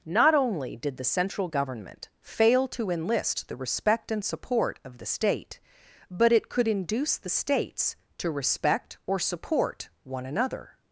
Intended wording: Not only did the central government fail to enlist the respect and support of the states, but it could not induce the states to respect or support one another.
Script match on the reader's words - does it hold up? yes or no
no